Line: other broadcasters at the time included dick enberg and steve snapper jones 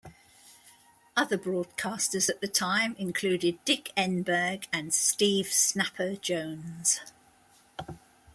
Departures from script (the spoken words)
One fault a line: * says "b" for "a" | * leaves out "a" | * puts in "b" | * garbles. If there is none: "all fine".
all fine